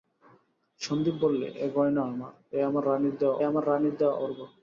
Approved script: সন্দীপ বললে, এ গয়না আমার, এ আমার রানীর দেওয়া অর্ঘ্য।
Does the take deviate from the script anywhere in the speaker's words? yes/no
yes